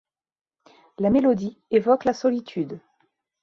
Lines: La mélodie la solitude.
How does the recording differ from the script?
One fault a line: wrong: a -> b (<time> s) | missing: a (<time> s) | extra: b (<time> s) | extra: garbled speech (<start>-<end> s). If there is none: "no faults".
extra: évoque (1.7 s)